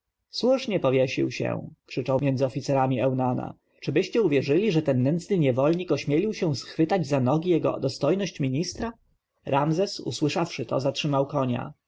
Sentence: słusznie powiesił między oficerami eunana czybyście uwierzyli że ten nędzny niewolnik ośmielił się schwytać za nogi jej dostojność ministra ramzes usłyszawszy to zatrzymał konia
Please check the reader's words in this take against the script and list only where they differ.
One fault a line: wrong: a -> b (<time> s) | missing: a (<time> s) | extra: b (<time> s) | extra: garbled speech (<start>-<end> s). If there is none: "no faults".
extra: się krzyczał (1.3 s)
wrong: jej -> jego (7.5 s)